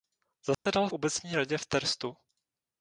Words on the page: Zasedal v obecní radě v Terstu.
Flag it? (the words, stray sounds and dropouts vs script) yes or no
yes